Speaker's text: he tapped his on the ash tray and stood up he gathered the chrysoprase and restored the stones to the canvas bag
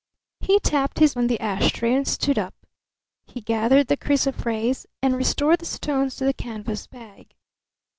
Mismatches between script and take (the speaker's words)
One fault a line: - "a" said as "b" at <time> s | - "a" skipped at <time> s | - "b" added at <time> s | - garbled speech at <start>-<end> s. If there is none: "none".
none